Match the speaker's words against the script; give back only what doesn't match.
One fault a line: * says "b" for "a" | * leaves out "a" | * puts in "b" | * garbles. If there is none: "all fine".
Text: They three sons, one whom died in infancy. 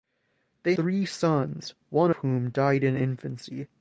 all fine